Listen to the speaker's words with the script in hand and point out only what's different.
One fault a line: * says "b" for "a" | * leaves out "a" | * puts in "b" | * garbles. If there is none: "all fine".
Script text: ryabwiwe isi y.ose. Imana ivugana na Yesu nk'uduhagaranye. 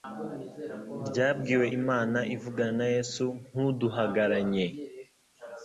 * leaves out "isi y.ose"